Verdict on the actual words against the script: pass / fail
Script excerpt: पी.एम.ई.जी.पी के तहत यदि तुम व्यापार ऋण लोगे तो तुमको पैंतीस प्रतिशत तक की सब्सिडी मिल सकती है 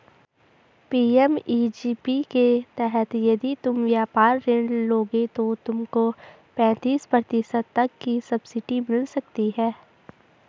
pass